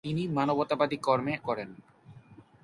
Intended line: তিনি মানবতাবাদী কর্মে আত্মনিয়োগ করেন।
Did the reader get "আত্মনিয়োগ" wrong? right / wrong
wrong